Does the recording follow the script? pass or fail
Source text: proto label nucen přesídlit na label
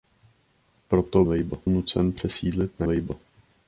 pass